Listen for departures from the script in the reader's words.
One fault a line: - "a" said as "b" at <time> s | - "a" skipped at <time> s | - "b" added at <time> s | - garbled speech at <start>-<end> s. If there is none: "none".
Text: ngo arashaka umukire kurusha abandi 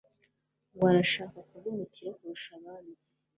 - "kuba" added at 1.5 s